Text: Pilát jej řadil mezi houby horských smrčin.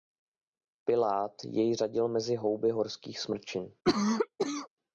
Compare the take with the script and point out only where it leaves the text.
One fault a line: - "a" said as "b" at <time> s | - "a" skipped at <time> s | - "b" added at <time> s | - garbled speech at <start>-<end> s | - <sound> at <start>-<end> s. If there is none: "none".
- cough at 3.8-4.7 s